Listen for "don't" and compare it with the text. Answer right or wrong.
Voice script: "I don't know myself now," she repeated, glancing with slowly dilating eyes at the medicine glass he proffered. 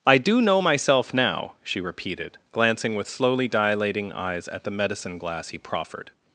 wrong